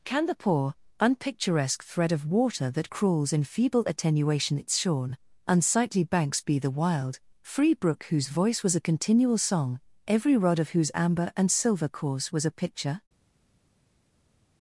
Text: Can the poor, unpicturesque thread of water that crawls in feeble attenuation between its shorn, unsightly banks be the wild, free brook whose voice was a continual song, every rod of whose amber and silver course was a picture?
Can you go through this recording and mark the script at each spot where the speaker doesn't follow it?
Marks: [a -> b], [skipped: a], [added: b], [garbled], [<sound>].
Can the poor, unpicturesque thread of water that crawls in feeble attenuation [skipped: between] its shorn, unsightly banks be the wild, free brook whose voice was a continual song, every rod of whose amber and silver course was a picture?